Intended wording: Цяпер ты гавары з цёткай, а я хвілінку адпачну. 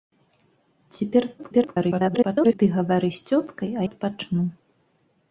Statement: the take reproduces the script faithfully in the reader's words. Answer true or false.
false